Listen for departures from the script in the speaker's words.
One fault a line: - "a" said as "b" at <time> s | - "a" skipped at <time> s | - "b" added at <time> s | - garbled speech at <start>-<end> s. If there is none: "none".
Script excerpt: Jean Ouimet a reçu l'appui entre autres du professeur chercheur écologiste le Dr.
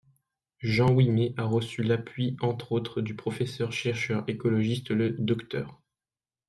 none